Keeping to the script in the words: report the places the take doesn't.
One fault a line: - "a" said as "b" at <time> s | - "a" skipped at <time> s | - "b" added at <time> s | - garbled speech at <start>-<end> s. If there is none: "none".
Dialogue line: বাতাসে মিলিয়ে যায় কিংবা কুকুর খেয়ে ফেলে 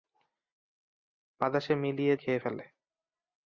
- "যায় কিংবা কুকুর" skipped at 2.1 s